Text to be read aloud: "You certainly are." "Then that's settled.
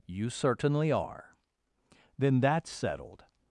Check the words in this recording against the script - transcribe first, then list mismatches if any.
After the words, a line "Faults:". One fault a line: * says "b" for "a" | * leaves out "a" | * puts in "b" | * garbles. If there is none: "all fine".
"You certainly are." "Then that's settled.
Faults:
all fine